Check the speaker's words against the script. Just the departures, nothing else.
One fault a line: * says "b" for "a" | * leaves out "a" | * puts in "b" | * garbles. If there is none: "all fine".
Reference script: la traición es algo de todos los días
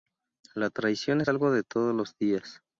all fine